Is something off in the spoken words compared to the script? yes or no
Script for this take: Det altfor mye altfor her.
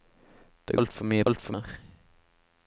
no